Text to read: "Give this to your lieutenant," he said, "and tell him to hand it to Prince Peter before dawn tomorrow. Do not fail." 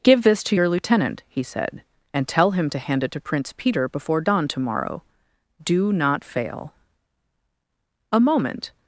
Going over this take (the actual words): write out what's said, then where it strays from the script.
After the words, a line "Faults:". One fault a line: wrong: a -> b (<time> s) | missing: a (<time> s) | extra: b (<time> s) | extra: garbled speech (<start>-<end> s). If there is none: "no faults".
"Give this to your lieutenant," he said, "and tell him to hand it to Prince Peter before dawn tomorrow. Do not fail." A moment
Faults:
extra: A moment (8.1 s)